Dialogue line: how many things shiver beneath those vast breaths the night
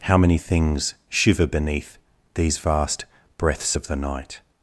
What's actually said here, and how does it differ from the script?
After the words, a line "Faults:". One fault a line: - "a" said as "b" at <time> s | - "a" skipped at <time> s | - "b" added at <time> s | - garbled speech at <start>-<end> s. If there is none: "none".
how many things shiver beneath these vast breaths of the night
Faults:
- "those" said as "these" at 2.3 s
- "of" added at 3.7 s